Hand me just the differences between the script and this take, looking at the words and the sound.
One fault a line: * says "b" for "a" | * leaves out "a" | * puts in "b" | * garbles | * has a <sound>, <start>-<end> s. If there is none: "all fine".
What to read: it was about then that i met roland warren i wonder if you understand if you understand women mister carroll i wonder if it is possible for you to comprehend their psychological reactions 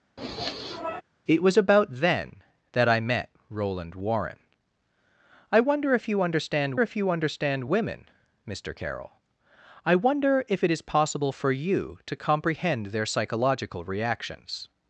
* has a sniff, 0.2-1.0 s